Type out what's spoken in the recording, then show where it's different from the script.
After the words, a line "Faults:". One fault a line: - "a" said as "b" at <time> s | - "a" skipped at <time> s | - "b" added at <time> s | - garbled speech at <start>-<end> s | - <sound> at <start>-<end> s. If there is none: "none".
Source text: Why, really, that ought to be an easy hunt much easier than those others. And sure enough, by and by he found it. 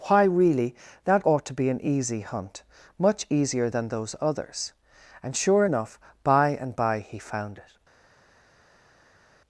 Why, really, that ought to be an easy hunt much easier than those others. And sure enough, by and by he found it.
Faults:
none